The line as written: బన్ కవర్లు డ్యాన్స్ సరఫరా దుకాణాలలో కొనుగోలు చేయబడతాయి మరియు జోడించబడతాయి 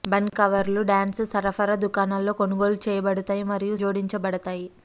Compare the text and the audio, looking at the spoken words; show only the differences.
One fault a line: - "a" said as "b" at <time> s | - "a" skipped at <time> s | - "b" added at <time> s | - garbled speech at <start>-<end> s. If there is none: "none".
none